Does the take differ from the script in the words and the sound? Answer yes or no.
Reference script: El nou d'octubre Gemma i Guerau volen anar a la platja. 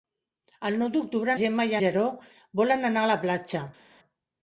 no